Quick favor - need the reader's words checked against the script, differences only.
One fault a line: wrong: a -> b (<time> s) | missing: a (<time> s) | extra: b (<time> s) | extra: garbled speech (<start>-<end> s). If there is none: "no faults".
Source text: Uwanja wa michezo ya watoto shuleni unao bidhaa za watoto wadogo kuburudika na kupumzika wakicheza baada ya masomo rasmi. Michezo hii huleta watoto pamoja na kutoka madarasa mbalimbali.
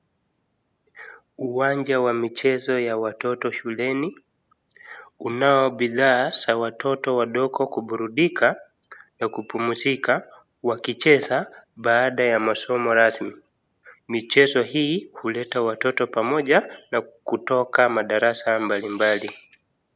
no faults